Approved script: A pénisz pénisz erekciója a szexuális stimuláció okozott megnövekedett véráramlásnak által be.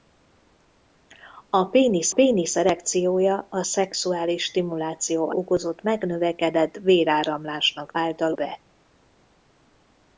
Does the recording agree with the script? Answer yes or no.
yes